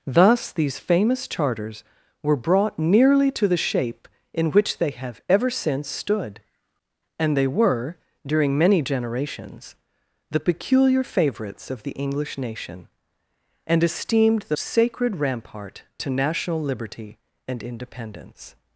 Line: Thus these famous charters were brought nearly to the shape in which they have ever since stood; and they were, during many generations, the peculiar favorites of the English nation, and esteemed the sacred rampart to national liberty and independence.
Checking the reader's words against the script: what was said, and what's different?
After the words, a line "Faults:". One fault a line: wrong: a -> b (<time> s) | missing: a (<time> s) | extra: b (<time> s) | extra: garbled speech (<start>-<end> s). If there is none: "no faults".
Thus these famous charters were brought nearly to the shape in which they have ever since stood; and they were, during many generations, the peculiar favorites of the English nation, and esteemed the sacred rampart to national liberty and independence.
Faults:
no faults